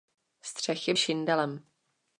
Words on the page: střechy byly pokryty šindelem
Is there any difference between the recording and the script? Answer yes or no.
yes